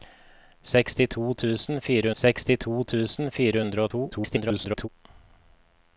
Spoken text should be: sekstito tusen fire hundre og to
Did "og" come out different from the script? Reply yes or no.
no